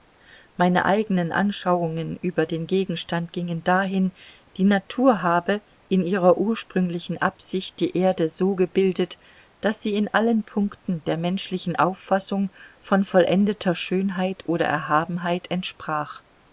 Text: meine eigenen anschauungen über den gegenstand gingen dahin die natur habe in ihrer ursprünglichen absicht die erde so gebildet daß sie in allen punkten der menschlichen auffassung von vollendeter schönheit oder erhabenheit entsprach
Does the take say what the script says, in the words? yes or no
yes